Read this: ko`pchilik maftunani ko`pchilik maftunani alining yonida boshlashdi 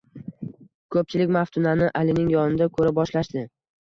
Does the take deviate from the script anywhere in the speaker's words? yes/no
yes